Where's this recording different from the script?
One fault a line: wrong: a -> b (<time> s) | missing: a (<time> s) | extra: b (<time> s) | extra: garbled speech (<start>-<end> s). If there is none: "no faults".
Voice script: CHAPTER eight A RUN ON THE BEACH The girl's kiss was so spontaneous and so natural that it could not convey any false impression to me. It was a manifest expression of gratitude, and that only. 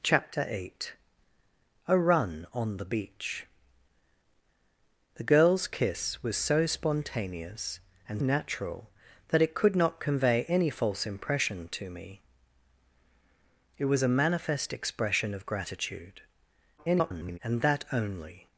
missing: so (8.2 s)
extra: garbled speech (16.8-17.4 s)